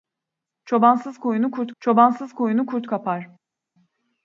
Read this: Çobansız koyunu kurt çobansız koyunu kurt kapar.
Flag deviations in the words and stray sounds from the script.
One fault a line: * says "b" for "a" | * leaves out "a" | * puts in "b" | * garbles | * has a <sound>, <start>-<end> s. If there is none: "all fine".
all fine